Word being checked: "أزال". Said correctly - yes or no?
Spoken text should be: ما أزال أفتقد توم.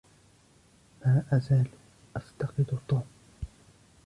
yes